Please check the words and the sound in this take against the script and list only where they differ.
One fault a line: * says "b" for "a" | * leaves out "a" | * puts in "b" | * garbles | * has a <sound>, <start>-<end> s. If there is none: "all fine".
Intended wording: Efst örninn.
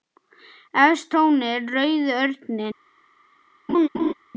* puts in "trónir rauði"
* has a laugh, 3.7-4.1 s